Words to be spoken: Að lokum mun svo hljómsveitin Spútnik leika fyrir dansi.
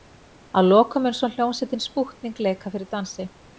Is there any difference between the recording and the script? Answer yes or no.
no